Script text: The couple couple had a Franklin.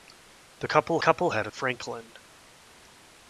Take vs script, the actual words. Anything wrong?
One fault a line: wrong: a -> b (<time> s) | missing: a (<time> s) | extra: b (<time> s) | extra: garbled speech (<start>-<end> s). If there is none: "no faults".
no faults